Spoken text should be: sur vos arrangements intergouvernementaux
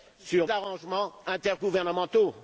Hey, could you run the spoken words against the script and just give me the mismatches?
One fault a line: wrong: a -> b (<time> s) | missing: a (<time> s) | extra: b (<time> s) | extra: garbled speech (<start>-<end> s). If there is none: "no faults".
missing: vos (0.5 s)